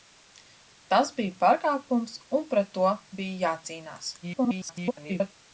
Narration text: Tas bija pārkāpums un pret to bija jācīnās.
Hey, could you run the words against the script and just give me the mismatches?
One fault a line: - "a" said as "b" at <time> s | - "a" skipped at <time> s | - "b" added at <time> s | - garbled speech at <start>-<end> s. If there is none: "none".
- garbled speech at 4.2-5.3 s